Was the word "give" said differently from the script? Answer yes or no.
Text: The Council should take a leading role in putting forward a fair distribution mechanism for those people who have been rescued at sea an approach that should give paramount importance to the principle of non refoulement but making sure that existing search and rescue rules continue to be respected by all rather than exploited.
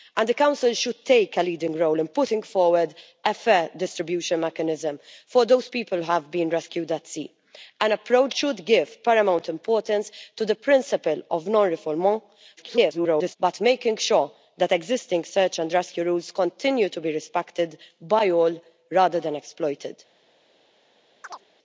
no